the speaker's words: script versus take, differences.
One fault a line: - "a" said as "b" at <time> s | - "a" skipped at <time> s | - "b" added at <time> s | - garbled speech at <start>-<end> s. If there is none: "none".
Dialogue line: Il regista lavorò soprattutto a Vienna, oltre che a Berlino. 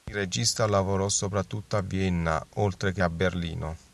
none